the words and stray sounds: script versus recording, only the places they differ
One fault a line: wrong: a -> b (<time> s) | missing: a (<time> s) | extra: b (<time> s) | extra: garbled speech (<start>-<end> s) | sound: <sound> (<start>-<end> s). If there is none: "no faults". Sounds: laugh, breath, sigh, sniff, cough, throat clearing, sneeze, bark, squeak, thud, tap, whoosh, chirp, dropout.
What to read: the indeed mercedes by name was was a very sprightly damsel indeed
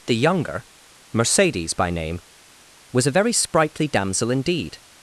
wrong: indeed -> younger (0.1 s)
missing: was (3.0 s)